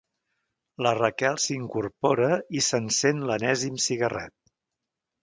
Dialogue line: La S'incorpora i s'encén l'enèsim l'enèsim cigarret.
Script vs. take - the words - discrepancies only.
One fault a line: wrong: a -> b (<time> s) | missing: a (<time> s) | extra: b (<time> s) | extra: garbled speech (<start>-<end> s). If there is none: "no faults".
extra: Raquel (1.0 s)
missing: l'enèsim (3.8 s)